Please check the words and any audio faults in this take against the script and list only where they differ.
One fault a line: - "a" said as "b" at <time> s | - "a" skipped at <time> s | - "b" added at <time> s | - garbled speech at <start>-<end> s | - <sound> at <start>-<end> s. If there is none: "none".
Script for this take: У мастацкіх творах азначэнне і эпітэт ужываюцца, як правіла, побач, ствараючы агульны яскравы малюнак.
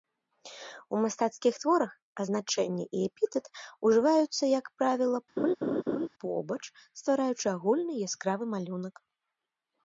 - laugh at 5.4-6.1 s